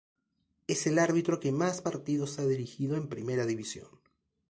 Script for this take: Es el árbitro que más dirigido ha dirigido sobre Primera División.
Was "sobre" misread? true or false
true